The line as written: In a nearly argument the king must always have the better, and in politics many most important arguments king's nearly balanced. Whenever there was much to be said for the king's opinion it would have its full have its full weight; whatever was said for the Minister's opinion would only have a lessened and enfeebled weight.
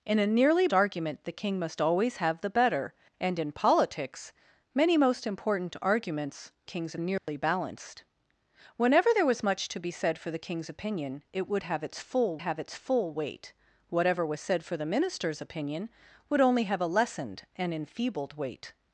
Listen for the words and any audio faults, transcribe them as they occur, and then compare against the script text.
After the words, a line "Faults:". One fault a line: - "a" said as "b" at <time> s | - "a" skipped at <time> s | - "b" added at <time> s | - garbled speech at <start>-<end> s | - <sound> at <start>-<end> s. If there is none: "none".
In a nearly argument the king must always have the better, and in politics many most important arguments king's nearly balanced. Whenever there was much to be said for the king's opinion it would have its full have its full weight; whatever was said for the Minister's opinion would only have a lessened and enfeebled weight.
Faults:
- dropout at 7.2-7.3 s